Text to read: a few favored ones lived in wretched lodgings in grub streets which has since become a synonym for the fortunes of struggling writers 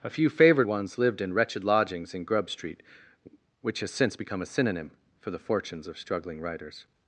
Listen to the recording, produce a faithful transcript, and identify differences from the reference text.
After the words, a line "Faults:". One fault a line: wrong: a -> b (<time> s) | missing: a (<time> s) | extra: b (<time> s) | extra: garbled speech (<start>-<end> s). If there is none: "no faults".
a few favored ones lived in wretched lodgings in grub street which has since become a synonym for the fortunes of struggling writers
Faults:
wrong: streets -> street (2.5 s)